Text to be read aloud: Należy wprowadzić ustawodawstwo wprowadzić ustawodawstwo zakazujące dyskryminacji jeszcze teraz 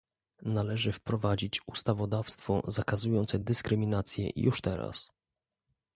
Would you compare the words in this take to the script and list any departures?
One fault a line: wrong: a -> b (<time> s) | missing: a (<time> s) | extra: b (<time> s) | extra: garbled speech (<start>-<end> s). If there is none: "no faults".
missing: wprowadzić ustawodawstwo (2.6 s)
wrong: jeszcze -> już (4.4 s)